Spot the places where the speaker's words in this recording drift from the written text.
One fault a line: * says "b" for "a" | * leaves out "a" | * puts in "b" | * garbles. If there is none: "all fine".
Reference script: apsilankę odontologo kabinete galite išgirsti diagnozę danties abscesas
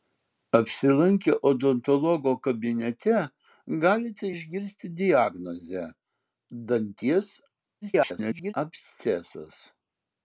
* garbles